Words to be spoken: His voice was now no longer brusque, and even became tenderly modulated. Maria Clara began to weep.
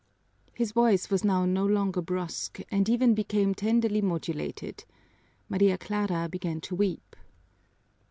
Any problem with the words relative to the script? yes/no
no